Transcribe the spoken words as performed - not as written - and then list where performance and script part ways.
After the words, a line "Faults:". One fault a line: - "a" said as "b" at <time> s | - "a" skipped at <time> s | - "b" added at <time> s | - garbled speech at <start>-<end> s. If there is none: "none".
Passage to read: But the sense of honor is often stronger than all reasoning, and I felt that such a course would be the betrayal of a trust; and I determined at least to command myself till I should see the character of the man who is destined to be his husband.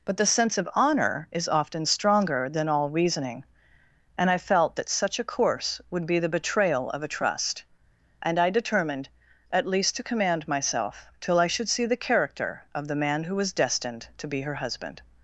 But the sense of honor is often stronger than all reasoning, and I felt that such a course would be the betrayal of a trust; and I determined at least to command myself till I should see the character of the man who was destined to be her husband.
Faults:
- "is" said as "was" at 13.4 s
- "his" said as "her" at 14.4 s